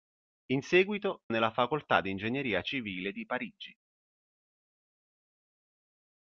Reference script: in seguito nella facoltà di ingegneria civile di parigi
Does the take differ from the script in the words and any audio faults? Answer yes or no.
no